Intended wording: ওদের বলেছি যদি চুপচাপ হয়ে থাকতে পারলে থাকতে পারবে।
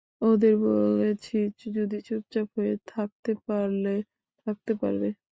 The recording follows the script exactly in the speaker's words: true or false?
true